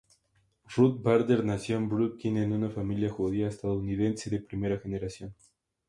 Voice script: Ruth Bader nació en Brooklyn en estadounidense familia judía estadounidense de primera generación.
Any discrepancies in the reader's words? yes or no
yes